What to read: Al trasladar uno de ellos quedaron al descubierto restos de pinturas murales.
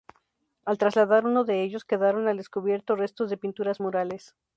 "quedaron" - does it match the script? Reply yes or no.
yes